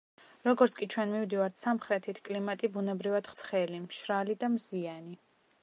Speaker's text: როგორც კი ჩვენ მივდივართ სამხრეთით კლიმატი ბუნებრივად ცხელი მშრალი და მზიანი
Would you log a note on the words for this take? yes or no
no